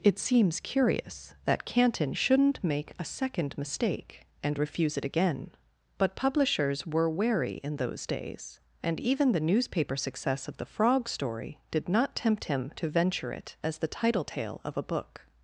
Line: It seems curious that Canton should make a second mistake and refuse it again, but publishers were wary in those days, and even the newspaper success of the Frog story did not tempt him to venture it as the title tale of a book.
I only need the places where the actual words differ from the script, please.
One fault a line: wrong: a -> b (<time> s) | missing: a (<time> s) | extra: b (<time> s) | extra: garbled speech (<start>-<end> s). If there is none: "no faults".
wrong: should -> shouldn't (2.1 s)